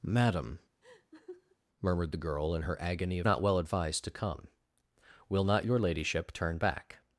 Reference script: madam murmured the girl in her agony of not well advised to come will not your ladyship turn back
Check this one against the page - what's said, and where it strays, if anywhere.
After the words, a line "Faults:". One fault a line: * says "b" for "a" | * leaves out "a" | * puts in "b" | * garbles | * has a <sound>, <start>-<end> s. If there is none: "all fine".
madam murmured the girl in her agony of not well advised to come will not your ladyship turn back
Faults:
* has a laugh, 0.8-1.6 s